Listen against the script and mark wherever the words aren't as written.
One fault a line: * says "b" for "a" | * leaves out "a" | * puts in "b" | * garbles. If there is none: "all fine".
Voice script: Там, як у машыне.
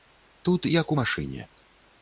* says "Тут" for "Там"